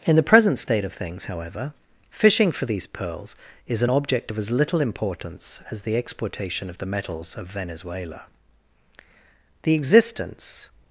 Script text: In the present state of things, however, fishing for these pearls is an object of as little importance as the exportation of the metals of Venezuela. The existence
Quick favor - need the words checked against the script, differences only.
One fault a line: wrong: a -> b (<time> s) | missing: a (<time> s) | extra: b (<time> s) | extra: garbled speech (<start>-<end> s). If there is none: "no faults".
no faults